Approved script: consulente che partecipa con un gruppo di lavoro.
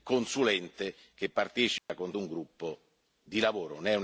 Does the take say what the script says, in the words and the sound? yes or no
no